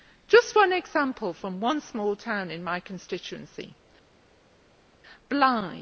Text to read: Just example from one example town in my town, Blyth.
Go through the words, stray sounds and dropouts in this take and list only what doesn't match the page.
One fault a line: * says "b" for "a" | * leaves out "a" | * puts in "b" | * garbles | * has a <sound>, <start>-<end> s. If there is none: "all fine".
* puts in "one"
* says "small" for "example"
* says "constituency" for "town"